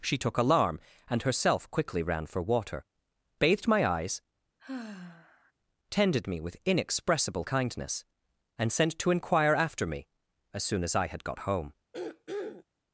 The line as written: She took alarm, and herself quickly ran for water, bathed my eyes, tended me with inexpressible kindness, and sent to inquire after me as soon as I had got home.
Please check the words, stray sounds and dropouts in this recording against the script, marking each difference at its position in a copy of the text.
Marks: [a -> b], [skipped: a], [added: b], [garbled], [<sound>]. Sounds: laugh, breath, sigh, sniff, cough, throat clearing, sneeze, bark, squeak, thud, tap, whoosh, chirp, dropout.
She took alarm, and herself quickly ran for water, bathed my eyes, [sigh] tended me with inexpressible kindness, and sent to inquire after me as soon as I had got home. [throat clearing]